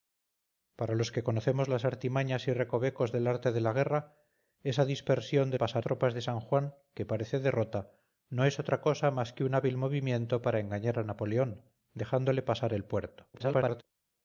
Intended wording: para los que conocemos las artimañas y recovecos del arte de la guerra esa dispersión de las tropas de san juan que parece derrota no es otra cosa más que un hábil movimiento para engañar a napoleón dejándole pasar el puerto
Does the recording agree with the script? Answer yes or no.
no